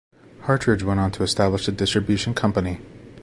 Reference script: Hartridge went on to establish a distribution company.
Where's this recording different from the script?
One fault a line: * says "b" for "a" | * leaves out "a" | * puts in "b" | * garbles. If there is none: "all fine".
all fine